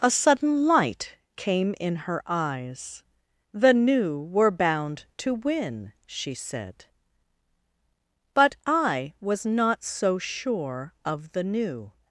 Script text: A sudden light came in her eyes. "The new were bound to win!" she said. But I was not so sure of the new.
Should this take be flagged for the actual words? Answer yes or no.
no